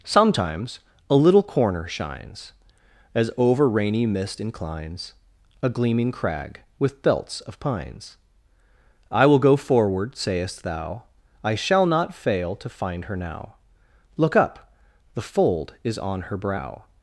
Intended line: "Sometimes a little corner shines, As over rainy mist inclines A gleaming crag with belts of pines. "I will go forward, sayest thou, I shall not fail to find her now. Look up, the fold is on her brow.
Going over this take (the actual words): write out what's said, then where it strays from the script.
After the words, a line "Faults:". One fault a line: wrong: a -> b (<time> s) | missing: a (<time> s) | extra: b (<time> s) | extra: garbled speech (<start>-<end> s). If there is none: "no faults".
"Sometimes a little corner shines, As over rainy mist inclines A gleaming crag with belts of pines. "I will go forward, sayest thou, I shall not fail to find her now. Look up, the fold is on her brow.
Faults:
no faults